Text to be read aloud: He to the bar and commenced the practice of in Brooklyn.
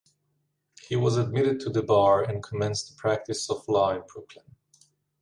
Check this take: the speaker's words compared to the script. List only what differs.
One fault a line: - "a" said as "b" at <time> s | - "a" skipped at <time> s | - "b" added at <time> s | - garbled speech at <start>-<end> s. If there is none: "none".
- "was admitted" added at 0.9 s
- "law" added at 3.7 s